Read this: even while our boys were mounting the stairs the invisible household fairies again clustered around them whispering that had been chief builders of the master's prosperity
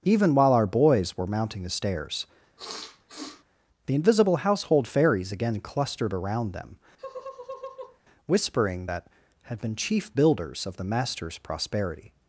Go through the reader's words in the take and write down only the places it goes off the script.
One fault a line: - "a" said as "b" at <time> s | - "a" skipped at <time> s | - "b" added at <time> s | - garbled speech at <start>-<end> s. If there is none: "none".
none